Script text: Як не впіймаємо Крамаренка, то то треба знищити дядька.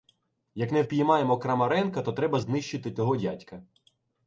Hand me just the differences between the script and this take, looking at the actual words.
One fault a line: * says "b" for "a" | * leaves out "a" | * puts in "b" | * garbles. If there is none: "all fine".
* leaves out "то"
* puts in "того"